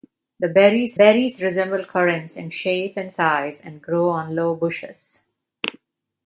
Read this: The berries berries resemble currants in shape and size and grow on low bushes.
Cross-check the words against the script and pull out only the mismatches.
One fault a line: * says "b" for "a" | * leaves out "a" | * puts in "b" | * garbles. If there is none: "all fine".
all fine